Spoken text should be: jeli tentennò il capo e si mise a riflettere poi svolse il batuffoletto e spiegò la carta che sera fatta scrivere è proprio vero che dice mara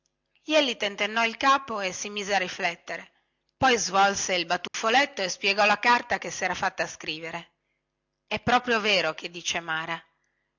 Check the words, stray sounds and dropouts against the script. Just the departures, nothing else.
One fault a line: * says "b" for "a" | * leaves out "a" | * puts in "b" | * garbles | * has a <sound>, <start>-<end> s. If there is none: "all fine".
* has a dropout, 4.7-4.7 s